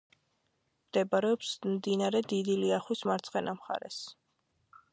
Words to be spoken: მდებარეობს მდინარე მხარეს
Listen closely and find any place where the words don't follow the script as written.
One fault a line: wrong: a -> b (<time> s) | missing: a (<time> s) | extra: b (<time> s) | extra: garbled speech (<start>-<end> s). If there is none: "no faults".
extra: დიდი ლიახვის მარცხენა (2.3 s)